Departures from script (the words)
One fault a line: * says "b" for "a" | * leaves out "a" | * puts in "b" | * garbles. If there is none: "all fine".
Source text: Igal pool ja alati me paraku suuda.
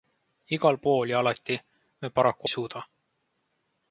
all fine